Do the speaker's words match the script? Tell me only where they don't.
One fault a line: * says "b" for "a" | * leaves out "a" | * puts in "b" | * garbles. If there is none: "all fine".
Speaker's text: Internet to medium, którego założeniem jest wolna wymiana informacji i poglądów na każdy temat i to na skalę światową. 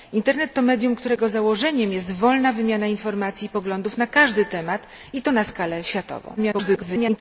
* garbles